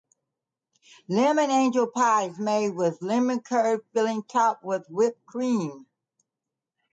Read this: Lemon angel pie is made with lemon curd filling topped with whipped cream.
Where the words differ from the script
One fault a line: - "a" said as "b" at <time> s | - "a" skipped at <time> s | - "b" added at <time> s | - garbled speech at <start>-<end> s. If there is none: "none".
none